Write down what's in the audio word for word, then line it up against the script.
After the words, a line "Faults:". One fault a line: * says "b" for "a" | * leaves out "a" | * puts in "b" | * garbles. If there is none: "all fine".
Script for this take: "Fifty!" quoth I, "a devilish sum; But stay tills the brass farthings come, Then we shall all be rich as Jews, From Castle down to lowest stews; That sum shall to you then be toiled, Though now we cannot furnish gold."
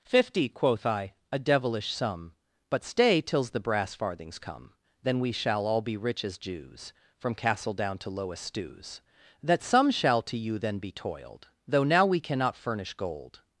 "Fifty!" quoth I, "a devilish sum; But stay tills the brass farthings come, Then we shall all be rich as Jews, From Castle down to lowest stews; That sum shall to you then be toiled, Though now we cannot furnish gold."
Faults:
all fine